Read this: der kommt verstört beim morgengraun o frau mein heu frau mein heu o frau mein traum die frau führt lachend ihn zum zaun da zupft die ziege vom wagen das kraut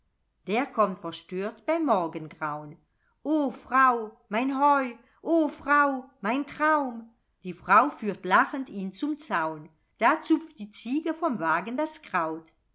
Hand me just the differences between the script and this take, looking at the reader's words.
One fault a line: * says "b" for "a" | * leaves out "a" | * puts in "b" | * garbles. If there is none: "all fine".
* leaves out "frau mein heu"